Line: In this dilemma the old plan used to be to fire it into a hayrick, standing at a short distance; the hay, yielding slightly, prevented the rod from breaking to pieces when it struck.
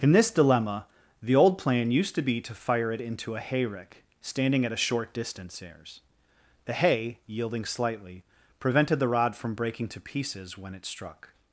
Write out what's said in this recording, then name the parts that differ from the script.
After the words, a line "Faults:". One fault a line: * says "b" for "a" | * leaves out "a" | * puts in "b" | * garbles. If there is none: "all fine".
In this dilemma the old plan used to be to fire it into a hayrick, standing at a short distance; airs the hay, yielding slightly, prevented the rod from breaking to pieces when it struck.
Faults:
* puts in "airs"